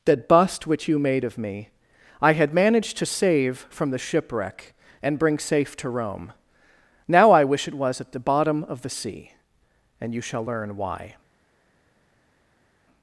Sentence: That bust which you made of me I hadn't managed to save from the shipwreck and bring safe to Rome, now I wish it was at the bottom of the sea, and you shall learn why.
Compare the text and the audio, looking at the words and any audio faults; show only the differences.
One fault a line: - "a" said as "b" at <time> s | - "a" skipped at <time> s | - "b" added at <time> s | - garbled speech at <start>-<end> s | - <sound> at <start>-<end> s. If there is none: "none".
- "hadn't" said as "had" at 2.3 s